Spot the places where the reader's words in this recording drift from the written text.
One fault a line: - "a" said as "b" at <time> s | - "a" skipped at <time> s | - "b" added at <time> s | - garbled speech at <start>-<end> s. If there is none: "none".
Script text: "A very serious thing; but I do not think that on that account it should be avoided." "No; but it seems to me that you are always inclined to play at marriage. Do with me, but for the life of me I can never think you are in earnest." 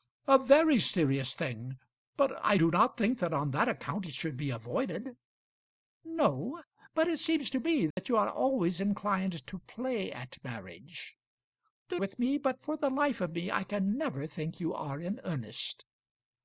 none